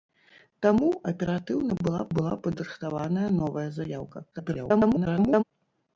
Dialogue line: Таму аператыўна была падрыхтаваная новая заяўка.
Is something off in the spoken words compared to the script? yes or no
yes